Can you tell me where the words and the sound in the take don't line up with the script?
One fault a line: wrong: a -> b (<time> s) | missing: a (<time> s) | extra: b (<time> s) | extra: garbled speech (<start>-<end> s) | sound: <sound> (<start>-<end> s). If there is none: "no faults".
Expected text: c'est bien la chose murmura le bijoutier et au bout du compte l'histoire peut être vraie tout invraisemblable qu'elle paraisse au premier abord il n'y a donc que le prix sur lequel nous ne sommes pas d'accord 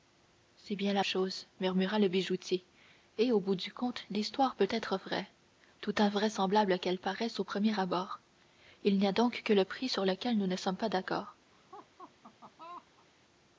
sound: laugh (11.5-13.1 s)